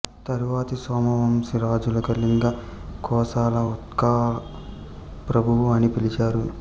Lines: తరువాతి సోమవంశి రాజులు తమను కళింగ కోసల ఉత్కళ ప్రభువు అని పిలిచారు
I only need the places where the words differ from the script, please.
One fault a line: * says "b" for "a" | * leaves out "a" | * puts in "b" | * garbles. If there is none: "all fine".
* leaves out "తమను"